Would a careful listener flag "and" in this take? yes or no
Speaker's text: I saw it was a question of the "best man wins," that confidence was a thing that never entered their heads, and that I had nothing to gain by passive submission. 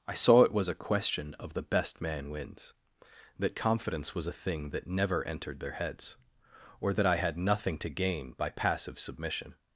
yes